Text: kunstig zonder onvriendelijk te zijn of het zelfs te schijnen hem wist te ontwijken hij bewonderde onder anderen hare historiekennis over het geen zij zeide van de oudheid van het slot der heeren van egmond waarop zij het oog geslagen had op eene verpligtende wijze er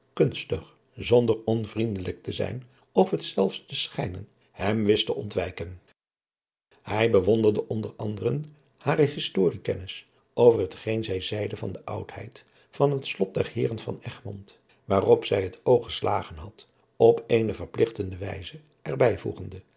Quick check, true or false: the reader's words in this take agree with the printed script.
true